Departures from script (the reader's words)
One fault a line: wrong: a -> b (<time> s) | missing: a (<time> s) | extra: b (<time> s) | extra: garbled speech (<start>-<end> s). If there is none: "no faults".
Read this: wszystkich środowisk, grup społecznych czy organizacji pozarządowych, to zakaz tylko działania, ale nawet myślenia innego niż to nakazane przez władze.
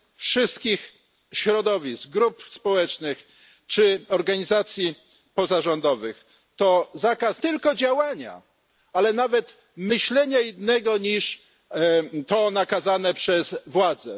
no faults